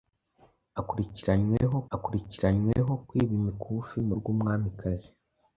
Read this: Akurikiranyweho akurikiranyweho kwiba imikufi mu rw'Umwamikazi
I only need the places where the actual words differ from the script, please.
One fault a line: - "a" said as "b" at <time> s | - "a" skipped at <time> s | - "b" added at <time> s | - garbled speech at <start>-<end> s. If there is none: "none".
none